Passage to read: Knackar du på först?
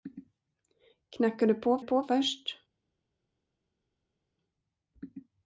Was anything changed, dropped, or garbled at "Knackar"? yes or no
no